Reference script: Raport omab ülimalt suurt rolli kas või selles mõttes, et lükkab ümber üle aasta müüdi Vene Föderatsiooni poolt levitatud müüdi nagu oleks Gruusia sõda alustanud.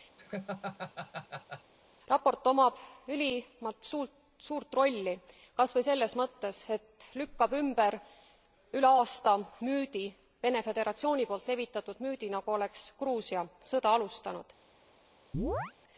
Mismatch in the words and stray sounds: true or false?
true